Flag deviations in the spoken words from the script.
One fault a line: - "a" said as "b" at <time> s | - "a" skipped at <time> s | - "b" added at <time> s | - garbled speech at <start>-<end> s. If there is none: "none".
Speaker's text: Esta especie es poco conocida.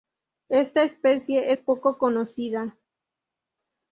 none